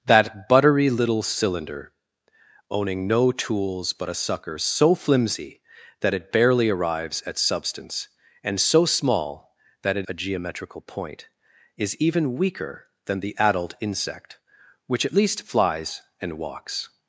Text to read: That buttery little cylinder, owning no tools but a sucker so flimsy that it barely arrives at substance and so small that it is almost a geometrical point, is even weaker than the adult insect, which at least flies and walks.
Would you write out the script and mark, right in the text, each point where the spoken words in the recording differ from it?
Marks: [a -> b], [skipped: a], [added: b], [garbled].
That buttery little cylinder, owning no tools but a sucker so flimsy that it barely arrives at substance and so small that it [skipped: is almost] a geometrical point, is even weaker than the adult insect, which at least flies and walks.